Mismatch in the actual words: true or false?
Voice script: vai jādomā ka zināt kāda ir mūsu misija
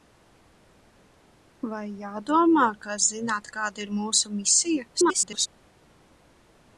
true